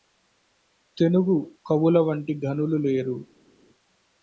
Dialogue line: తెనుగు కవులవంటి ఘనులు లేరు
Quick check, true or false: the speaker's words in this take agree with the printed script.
true